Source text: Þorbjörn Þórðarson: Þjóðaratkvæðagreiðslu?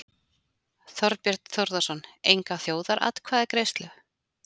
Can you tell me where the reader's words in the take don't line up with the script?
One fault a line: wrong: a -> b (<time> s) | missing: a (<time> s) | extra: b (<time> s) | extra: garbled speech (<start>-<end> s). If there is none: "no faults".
extra: Enga (2.4 s)